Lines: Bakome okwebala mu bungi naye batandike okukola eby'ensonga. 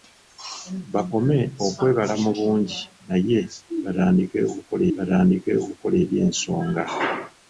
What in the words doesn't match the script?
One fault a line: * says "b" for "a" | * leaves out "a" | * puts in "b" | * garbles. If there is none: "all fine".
* puts in "batandike okukola"